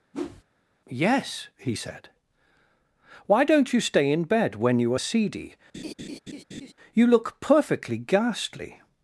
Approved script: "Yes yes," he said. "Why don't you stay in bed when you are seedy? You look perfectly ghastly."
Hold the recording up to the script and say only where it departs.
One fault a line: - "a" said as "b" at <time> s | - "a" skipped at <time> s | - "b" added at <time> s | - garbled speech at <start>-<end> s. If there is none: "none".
- "yes" skipped at 1.5 s